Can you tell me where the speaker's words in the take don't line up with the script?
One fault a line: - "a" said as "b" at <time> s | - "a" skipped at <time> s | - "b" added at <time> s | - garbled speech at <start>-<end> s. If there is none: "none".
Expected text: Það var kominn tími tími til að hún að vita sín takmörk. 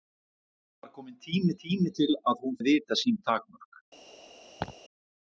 none